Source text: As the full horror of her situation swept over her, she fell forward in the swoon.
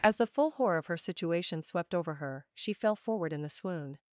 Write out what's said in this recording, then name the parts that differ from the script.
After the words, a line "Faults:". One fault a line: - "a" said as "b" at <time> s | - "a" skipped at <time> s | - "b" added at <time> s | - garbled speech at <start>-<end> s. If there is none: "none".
As the full horror of her situation swept over her, she fell forward in the swoon.
Faults:
none